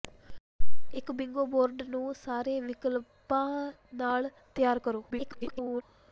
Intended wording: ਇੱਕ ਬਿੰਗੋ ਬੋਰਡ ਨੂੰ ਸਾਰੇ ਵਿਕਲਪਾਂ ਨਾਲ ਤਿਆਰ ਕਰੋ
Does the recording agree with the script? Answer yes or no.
no